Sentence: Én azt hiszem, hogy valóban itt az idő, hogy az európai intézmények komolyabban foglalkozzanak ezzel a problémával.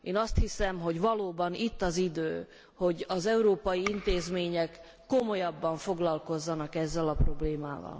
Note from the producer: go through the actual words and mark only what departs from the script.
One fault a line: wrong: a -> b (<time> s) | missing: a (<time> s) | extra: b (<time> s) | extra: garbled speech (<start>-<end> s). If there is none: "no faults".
no faults